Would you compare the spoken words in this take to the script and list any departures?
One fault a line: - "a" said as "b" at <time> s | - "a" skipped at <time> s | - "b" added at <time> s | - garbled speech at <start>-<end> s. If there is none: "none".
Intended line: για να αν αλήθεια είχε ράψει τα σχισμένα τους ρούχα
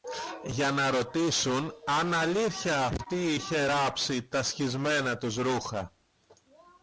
- "ρωτήσουν" added at 0.9 s
- "αυτή" added at 2.9 s